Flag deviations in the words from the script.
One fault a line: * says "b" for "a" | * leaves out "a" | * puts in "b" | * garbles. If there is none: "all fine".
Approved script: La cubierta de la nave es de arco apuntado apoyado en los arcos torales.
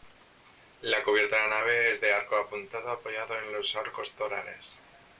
all fine